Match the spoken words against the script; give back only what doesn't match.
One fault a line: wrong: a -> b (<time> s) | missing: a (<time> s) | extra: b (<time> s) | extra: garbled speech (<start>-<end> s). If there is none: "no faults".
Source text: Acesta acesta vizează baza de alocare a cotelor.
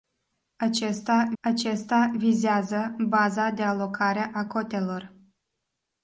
no faults